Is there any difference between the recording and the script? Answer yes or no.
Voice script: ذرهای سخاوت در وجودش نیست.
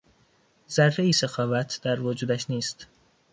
no